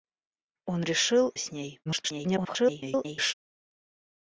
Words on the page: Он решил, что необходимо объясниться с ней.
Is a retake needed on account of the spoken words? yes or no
yes